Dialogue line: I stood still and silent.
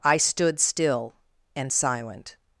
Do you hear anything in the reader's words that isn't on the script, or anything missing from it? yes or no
no